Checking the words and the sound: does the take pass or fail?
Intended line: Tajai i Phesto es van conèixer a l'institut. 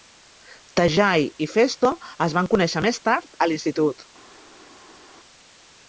fail